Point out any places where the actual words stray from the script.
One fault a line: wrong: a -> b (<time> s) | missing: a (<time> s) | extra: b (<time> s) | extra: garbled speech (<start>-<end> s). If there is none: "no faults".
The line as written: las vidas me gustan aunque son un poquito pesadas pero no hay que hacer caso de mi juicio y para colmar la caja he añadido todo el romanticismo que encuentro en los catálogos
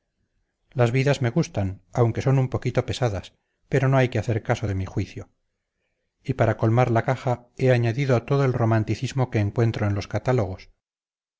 no faults